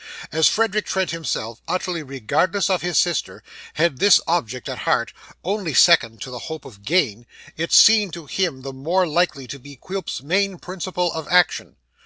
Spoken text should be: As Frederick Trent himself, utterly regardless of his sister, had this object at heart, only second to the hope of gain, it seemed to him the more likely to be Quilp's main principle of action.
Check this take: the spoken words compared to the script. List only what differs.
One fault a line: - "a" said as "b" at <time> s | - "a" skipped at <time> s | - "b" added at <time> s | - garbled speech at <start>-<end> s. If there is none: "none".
none